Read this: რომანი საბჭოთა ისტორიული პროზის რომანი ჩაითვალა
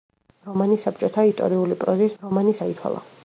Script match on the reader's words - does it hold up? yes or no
yes